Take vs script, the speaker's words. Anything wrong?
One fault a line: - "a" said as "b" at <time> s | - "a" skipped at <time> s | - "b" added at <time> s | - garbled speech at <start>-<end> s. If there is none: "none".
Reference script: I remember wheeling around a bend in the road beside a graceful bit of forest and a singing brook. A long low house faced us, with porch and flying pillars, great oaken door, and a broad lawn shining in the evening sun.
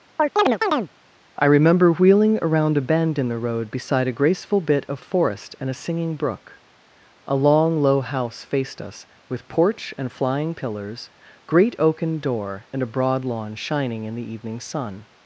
none